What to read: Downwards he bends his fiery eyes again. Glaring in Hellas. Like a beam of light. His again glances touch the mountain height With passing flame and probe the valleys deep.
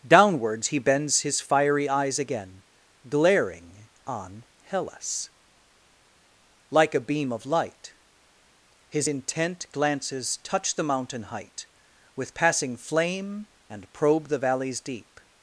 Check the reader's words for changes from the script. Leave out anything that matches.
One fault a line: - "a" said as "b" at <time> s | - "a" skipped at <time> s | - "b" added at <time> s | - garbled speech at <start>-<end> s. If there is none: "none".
- "in" said as "on" at 4.0 s
- "again" said as "intent" at 9.0 s